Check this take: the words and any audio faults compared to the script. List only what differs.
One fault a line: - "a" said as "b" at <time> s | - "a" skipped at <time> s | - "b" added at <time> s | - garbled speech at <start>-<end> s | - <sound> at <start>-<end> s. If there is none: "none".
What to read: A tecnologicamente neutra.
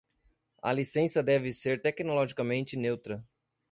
- "licença deve ser" added at 0.7 s